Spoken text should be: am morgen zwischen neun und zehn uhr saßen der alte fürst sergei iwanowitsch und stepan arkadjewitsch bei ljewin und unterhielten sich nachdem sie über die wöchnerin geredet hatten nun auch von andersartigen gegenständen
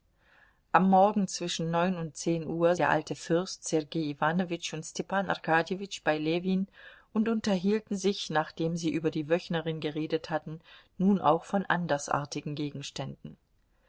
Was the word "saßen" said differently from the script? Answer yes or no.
yes